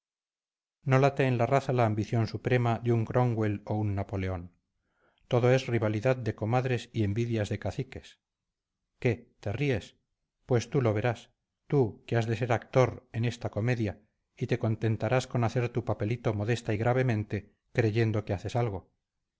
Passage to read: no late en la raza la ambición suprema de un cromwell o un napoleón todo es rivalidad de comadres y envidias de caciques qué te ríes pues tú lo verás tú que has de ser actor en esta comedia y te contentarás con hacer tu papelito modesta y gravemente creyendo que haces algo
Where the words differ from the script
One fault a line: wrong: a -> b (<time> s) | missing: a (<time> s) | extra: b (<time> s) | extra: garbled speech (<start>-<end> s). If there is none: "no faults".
no faults